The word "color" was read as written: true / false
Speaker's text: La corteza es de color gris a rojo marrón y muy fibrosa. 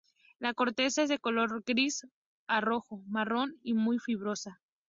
true